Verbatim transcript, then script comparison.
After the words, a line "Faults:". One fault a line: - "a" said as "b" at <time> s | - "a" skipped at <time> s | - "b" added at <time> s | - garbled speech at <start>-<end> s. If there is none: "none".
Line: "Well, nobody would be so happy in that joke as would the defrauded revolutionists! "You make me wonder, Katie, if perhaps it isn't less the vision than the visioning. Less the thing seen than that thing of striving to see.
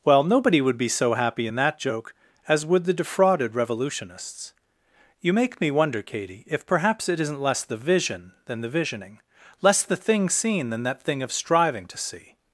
"Well, nobody would be so happy in that joke as would the defrauded revolutionists! "You make me wonder, Katie, if perhaps it isn't less the vision than the visioning. Less the thing seen than that thing of striving to see.
Faults:
none